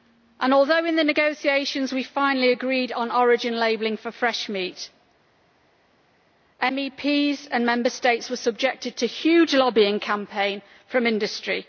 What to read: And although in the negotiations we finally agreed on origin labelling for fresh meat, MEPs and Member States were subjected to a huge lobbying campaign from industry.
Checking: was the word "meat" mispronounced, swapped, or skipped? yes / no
no